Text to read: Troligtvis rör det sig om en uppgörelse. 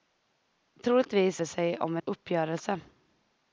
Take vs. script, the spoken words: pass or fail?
fail